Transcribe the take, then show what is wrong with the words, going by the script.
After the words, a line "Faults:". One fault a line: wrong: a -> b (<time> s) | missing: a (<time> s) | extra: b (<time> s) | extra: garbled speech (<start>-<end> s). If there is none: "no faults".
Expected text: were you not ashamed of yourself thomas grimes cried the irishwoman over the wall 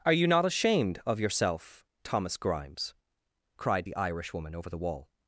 are you not ashamed of yourself thomas grimes cried the irishwoman over the wall
Faults:
wrong: were -> are (0.0 s)